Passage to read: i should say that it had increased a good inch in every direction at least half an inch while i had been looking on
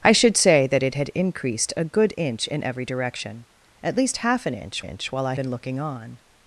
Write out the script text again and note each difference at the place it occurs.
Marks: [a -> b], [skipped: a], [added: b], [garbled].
i should say that it had increased a good inch in every direction at least half an inch [added: inch] while i [skipped: had] been looking on